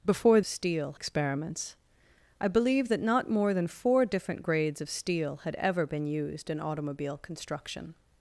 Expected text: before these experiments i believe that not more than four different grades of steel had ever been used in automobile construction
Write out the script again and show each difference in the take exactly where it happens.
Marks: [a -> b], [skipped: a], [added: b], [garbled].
before [these -> steel] experiments i believe that not more than four different grades of steel had ever been used in automobile construction